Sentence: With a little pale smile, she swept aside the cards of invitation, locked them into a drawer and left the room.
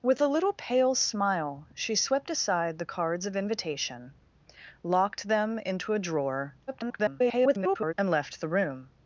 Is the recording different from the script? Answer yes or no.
yes